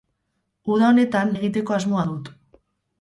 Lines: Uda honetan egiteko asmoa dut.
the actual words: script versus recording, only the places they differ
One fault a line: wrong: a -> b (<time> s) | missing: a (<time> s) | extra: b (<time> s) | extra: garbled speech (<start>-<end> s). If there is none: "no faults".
no faults